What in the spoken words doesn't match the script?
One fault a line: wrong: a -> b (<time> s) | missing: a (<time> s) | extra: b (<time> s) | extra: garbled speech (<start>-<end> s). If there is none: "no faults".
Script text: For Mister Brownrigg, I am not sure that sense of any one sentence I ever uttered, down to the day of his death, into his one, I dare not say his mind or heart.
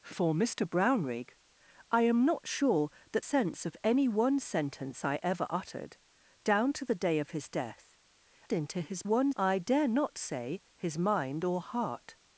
no faults